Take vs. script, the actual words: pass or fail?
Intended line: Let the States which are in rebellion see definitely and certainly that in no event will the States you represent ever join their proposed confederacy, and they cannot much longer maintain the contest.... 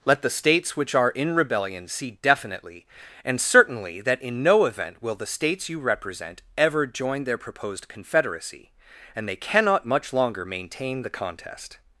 pass